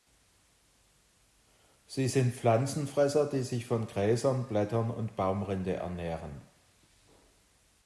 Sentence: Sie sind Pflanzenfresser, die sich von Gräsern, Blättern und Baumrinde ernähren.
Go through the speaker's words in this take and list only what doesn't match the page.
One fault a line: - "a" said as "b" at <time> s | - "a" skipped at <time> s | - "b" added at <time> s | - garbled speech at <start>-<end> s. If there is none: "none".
none